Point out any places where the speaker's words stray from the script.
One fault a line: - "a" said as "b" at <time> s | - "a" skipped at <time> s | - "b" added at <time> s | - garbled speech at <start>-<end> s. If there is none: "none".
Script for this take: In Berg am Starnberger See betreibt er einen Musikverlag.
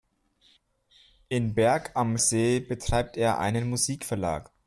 - "Starnberger" skipped at 2.2 s